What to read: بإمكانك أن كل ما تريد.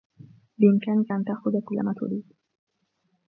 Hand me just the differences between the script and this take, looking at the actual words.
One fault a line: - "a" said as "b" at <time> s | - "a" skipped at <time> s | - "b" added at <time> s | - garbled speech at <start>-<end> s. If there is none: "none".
- "تأخذ" added at 1.2 s